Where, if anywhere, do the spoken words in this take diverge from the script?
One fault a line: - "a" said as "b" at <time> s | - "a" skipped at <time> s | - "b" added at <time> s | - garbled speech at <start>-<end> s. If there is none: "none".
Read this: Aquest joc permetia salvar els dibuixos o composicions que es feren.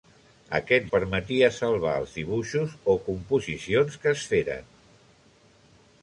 - "joc" skipped at 0.9 s